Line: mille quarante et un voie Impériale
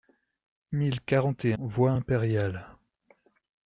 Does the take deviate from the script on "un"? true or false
true